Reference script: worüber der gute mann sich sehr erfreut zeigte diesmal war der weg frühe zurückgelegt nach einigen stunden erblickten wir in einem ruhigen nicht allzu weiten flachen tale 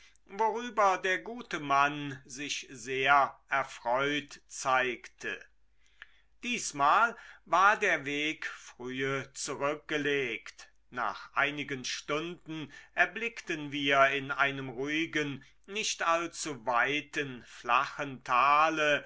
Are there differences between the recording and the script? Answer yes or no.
no